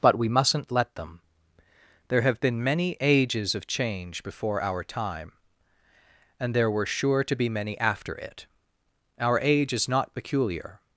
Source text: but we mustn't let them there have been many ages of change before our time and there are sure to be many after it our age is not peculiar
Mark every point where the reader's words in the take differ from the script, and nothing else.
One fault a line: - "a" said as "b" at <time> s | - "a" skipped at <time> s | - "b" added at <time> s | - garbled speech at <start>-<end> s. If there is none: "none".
- "are" said as "were" at 6.7 s